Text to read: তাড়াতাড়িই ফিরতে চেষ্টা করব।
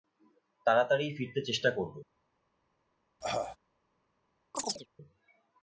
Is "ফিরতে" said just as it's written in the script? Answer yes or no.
yes